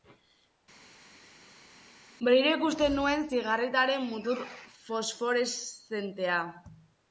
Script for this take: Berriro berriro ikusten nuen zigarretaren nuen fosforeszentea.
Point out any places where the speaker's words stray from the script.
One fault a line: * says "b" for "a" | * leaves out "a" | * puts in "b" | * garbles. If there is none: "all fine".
* leaves out "berriro"
* says "mutur" for "nuen"